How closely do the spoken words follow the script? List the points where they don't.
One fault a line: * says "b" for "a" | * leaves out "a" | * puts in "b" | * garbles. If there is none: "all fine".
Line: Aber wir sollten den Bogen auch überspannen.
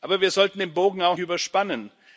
all fine